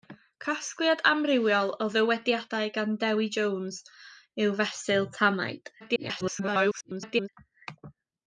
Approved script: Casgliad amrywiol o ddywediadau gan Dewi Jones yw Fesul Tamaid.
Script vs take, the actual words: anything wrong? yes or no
yes